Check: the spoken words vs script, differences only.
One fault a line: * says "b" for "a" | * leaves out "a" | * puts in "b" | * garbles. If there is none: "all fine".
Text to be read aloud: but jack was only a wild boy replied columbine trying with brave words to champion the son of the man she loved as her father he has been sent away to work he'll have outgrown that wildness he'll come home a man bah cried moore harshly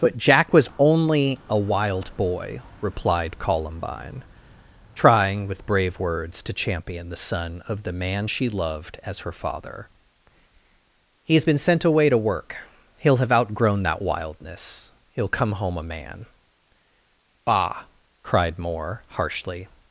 all fine